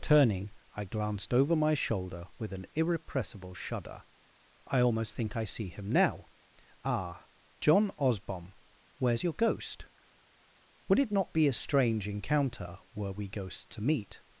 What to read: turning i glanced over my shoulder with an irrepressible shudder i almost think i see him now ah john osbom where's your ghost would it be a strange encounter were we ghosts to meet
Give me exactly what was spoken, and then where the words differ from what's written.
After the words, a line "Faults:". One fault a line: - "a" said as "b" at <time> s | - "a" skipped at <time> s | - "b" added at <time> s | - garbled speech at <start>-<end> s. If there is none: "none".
turning i glanced over my shoulder with an irrepressible shudder i almost think i see him now ah john osbom where's your ghost would it not be a strange encounter were we ghosts to meet
Faults:
- "not" added at 11.1 s